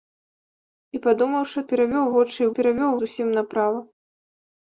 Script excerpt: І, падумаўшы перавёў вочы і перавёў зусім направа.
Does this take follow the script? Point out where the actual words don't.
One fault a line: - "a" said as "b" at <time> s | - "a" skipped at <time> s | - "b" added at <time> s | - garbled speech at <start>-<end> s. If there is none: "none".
none